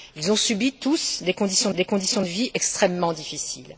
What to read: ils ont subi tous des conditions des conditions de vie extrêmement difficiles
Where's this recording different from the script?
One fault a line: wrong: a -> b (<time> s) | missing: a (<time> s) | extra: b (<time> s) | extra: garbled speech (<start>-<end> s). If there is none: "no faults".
no faults